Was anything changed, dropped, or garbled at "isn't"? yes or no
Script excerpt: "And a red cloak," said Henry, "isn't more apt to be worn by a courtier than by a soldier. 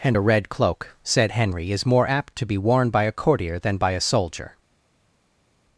yes